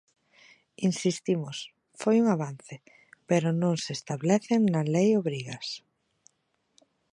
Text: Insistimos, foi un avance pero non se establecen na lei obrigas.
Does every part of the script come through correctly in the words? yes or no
yes